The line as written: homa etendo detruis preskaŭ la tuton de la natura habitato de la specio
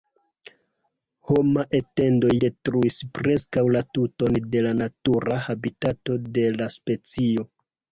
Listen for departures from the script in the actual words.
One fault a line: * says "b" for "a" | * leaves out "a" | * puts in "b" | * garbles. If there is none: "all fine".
all fine